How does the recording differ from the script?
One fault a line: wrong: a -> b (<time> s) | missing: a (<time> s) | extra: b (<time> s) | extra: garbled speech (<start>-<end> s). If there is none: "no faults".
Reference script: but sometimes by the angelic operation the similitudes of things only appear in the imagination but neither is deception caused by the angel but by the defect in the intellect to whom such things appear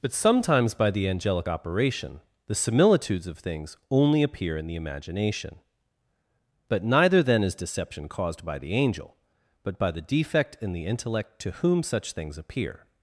extra: then (7.2 s)